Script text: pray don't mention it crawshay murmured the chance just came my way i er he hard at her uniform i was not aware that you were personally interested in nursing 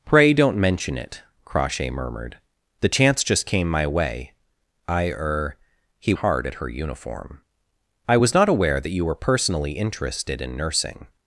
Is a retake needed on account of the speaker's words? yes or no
no